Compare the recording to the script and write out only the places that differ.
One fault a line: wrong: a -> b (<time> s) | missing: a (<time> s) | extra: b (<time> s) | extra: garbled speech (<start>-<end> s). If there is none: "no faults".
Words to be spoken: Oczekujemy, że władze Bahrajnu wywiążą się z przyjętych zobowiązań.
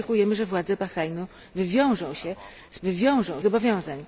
wrong: przyjętych -> wywiążą (2.8 s)